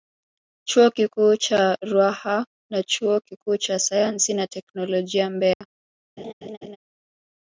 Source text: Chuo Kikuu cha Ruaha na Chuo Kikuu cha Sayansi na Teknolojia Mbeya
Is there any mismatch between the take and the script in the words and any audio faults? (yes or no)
yes